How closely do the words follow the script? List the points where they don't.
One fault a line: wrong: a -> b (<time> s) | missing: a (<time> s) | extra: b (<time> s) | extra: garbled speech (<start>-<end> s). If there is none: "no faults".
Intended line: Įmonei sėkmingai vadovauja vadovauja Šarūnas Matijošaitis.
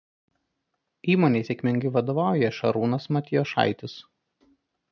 missing: vadovauja (2.5 s)